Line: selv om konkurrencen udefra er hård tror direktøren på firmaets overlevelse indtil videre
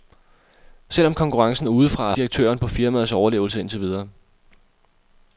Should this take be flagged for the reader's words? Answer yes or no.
yes